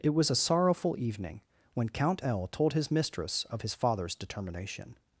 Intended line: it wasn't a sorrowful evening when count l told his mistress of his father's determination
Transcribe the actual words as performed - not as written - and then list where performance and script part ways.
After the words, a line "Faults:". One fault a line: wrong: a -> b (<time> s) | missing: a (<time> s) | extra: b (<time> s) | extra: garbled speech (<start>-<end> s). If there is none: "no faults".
it was a sorrowful evening when count l told his mistress of his father's determination
Faults:
wrong: wasn't -> was (0.1 s)